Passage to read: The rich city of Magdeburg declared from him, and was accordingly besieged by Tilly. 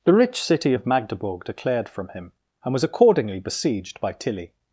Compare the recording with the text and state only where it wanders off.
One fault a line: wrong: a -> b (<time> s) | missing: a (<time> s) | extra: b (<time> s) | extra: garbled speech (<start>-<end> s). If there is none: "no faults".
no faults